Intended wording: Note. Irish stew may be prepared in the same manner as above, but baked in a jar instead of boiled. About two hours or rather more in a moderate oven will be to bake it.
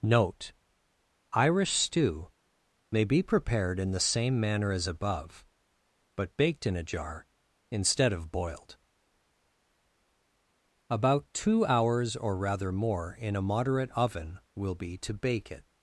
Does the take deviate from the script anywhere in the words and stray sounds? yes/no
no